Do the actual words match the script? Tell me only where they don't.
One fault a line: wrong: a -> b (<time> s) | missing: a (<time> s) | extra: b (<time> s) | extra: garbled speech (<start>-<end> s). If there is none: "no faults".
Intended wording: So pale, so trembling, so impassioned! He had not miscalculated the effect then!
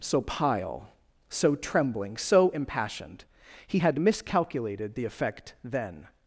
wrong: pale -> pile (0.2 s)
missing: not (4.0 s)